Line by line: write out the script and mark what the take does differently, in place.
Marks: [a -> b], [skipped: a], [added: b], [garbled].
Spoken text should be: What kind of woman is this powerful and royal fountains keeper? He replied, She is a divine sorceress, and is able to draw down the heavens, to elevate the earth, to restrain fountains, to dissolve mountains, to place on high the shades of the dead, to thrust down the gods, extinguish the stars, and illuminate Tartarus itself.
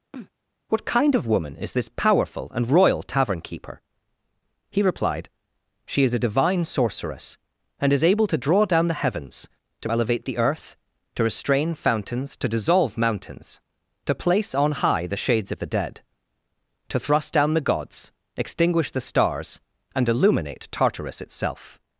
What kind of woman is this powerful and royal [fountains -> tavern] keeper? He replied, She is a divine sorceress, and is able to draw down the heavens, to elevate the earth, to restrain fountains, to dissolve mountains, to place on high the shades of the dead, to thrust down the gods, extinguish the stars, and illuminate Tartarus itself.